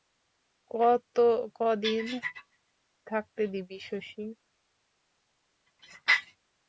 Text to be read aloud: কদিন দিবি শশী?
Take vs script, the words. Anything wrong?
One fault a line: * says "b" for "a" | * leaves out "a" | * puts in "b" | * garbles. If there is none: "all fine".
* puts in "থাকতে"